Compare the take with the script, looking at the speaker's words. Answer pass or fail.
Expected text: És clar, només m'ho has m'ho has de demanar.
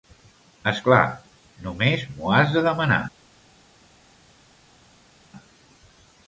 fail